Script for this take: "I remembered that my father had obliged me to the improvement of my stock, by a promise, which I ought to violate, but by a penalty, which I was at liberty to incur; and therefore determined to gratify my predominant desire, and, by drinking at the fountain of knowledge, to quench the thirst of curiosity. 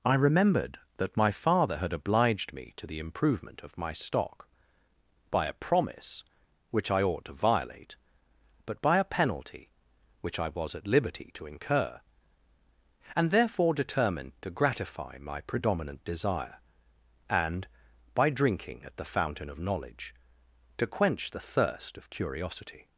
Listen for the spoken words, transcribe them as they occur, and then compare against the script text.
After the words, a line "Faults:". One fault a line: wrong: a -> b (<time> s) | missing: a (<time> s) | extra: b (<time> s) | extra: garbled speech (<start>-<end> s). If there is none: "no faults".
"I remembered that my father had obliged me to the improvement of my stock, by a promise, which I ought to violate, but by a penalty, which I was at liberty to incur; and therefore determined to gratify my predominant desire, and, by drinking at the fountain of knowledge, to quench the thirst of curiosity.
Faults:
no faults